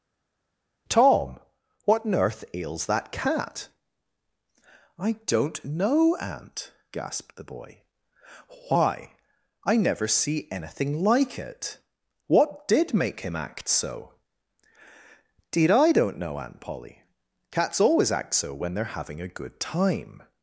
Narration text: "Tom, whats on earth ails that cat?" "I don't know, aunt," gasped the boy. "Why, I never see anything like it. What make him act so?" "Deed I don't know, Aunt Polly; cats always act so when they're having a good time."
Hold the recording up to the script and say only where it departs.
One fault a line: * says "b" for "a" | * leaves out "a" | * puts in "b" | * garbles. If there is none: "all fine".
* says "what" for "whats"
* puts in "did"